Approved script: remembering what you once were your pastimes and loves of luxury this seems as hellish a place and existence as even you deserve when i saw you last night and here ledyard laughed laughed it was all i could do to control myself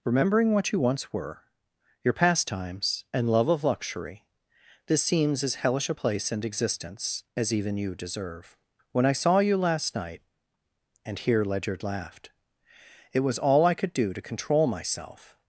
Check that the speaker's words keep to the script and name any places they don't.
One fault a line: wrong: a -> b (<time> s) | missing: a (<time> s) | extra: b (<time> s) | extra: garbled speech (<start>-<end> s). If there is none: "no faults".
wrong: loves -> love (3.3 s)
missing: laughed (12.3 s)